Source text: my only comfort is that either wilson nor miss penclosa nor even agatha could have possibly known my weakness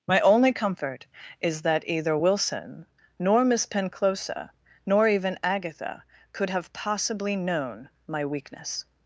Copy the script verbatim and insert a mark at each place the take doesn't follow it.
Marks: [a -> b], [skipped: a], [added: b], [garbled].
my only comfort is that either wilson nor miss penclosa nor even agatha could have possibly known my weakness